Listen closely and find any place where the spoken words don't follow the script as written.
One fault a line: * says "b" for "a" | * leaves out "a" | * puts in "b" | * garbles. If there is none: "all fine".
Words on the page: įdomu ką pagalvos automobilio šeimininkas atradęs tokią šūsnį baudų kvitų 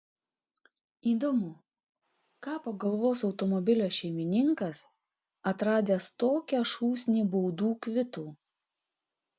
all fine